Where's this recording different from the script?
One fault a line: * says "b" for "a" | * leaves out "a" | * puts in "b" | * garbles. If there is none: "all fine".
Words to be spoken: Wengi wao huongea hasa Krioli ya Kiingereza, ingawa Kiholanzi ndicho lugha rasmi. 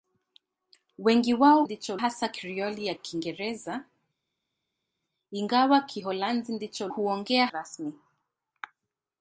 * says "ndicho" for "huongea"
* says "huongea" for "lugha"